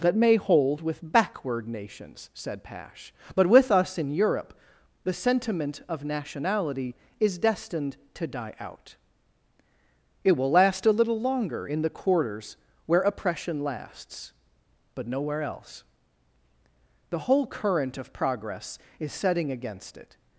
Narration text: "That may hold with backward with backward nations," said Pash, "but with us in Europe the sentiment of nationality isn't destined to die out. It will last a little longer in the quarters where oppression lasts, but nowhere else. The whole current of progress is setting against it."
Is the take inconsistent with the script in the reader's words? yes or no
yes